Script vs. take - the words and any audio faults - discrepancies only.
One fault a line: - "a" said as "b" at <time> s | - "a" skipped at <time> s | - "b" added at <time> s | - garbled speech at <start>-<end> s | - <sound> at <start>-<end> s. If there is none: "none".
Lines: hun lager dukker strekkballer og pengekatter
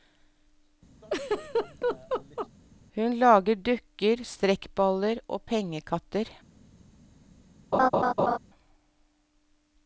- laugh at 1.0-2.5 s
- laugh at 7.7-8.4 s